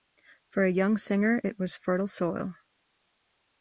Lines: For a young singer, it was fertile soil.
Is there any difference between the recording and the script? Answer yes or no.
no